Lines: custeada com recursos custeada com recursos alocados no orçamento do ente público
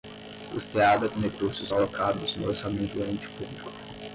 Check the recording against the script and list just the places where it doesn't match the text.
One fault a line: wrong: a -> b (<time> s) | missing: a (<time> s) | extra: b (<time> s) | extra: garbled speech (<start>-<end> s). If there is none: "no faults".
missing: custeada com recursos (1.7 s)